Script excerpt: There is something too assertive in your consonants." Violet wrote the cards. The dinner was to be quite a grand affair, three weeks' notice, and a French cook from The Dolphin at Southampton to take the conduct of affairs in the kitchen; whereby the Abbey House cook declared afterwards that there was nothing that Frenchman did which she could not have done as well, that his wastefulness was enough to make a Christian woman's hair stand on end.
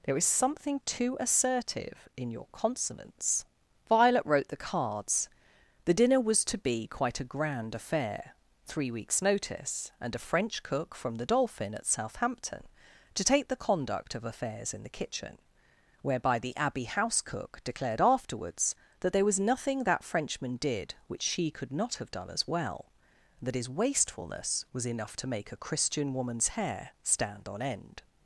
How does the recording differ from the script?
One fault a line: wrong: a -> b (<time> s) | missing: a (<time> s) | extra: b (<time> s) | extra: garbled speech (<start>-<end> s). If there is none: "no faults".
no faults